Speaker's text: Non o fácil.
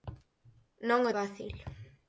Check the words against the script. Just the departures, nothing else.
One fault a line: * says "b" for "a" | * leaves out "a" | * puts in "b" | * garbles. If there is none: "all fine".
all fine